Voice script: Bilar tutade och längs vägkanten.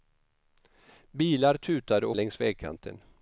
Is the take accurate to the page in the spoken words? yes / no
yes